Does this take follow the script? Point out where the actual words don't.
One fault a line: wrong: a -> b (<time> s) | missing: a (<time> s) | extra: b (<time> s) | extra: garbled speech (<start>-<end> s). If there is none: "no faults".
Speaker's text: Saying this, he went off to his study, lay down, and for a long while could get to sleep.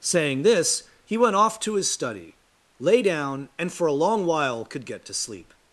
no faults